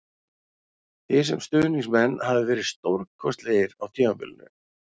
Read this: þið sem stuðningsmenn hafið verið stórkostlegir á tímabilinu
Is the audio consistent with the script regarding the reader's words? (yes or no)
yes